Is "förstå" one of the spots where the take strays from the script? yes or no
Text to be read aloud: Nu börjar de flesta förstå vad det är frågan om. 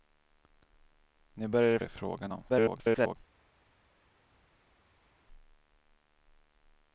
yes